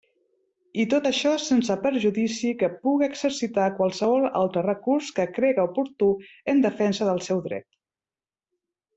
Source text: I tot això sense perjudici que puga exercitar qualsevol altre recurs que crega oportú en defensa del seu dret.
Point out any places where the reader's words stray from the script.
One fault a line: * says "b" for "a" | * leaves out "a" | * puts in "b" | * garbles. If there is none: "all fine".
all fine